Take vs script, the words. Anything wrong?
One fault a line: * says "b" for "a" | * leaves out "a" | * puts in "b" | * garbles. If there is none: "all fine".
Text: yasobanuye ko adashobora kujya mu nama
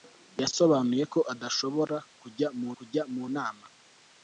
* puts in "kujya mu"